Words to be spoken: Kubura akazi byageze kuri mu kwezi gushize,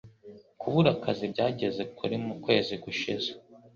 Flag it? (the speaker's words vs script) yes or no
no